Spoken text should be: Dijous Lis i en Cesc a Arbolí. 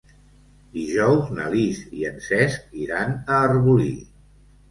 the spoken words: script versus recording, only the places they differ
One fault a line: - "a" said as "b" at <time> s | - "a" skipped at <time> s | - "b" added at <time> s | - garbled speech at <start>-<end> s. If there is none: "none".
- "na" added at 1.4 s
- "iran" added at 2.9 s